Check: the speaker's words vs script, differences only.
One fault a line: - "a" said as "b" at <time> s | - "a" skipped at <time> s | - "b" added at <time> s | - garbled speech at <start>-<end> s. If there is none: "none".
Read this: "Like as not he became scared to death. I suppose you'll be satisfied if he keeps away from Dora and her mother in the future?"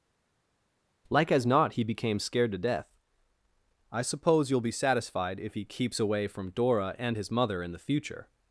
- "her" said as "his" at 7.1 s